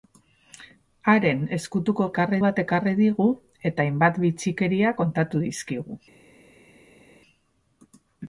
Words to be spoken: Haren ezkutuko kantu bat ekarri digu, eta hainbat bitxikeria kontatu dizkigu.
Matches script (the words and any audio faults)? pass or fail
fail